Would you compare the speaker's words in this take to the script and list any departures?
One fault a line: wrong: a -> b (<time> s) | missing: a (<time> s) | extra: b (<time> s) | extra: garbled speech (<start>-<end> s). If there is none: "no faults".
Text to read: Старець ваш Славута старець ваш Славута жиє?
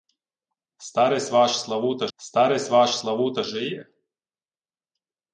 no faults